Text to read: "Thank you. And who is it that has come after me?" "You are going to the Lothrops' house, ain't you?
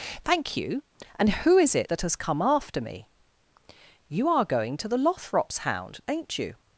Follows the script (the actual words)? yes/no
no